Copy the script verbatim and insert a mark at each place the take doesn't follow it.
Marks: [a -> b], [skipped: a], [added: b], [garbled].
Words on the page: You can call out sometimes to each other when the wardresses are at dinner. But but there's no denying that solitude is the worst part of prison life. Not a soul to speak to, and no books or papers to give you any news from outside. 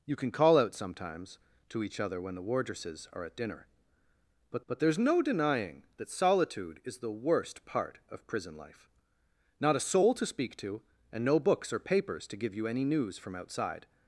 You can call out sometimes to each other when the wardresses are at dinner. But but there's no denying that solitude is the worst part of prison life. Not a soul to speak to, and no books or papers to give you any news from outside.